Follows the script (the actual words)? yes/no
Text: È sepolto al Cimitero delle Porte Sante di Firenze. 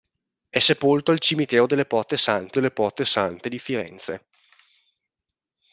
no